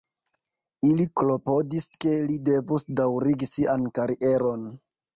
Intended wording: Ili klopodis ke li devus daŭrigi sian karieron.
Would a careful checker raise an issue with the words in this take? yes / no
no